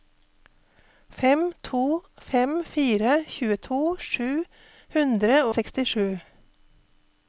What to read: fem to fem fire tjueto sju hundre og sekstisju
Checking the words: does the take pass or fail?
fail